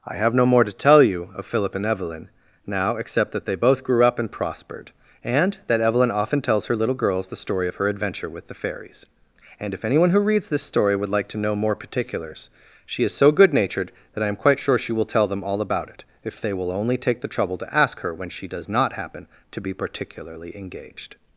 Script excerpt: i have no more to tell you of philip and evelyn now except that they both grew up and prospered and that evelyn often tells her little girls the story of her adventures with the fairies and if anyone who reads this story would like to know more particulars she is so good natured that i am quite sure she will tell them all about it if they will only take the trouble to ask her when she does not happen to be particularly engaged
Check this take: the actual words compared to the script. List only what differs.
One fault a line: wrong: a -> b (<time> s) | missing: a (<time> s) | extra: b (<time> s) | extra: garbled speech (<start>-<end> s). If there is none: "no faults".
wrong: adventures -> adventure (7.9 s)